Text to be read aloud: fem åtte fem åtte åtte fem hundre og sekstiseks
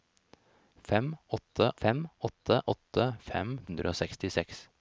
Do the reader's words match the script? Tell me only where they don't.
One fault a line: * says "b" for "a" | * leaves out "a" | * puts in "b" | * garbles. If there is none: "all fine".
all fine